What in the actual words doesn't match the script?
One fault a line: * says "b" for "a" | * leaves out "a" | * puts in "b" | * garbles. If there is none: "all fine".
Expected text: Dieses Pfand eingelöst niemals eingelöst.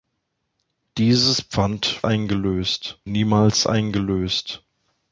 all fine